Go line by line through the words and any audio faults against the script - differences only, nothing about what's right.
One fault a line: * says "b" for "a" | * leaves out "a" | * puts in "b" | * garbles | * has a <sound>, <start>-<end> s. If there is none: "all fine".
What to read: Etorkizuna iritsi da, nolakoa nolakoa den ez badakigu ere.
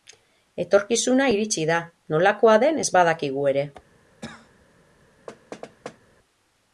* leaves out "nolakoa"
* has a cough, 4.2-4.7 s
* has a thud, 5.3-6.0 s